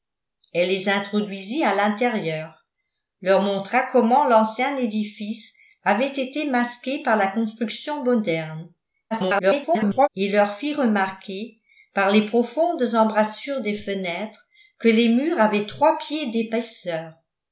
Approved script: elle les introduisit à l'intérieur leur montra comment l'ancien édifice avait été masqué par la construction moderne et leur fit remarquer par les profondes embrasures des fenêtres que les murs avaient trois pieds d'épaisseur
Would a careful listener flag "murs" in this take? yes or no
no